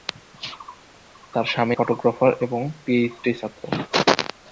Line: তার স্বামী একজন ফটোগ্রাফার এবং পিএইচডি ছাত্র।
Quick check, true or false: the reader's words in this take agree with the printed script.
false